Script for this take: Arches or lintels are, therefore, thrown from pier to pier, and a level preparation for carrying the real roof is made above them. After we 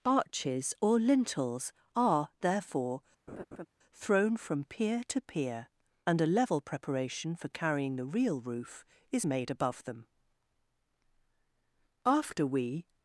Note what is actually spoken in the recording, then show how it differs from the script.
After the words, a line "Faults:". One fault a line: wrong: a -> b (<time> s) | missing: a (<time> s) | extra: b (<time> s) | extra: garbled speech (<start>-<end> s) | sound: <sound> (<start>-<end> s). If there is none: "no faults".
Arches or lintels are, therefore, thrown from pier to pier, and a level preparation for carrying the real roof is made above them. After we
Faults:
sound: laugh (3.3-3.7 s)